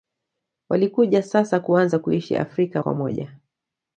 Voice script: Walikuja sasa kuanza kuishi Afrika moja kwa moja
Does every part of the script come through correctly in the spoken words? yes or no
no